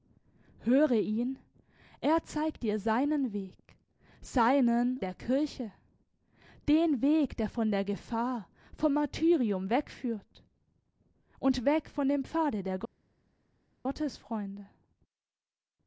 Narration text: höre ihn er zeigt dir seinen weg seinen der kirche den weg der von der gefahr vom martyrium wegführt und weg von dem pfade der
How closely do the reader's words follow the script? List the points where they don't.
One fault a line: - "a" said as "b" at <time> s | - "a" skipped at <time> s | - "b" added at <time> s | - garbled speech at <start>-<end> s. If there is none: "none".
none